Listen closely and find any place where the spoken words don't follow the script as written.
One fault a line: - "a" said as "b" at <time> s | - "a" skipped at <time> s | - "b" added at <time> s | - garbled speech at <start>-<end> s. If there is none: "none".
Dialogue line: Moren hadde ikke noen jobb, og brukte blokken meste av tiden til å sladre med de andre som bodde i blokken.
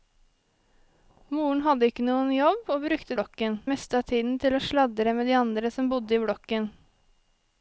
none